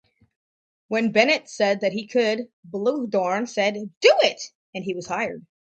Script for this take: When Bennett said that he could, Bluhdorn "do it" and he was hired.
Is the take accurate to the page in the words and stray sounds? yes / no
no